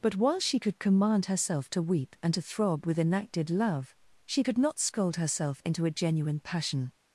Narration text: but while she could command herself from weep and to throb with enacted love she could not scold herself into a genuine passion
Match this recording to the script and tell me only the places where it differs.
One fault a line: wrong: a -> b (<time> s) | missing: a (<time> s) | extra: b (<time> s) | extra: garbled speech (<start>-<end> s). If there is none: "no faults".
wrong: from -> to (1.7 s)